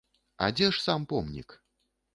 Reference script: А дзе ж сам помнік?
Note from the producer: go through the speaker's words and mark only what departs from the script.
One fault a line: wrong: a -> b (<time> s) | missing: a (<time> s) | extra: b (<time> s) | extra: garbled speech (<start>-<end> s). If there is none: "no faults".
no faults